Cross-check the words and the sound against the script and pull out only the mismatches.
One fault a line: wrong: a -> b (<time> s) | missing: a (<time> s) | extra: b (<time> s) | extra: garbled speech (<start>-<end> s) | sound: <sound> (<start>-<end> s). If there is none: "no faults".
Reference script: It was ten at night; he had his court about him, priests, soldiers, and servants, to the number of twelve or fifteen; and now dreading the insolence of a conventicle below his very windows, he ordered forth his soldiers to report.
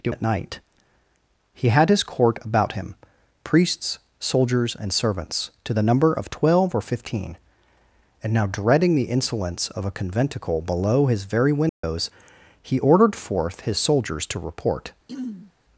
missing: was ten (0.1 s)
sound: dropout (11.7-11.8 s)
sound: throat clearing (15.1-15.5 s)